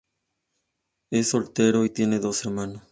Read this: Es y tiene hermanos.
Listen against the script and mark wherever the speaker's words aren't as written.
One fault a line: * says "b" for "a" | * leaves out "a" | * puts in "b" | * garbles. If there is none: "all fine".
* puts in "soltero"
* puts in "dos"